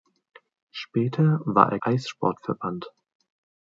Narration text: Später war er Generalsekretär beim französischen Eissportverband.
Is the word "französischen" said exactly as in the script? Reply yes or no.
no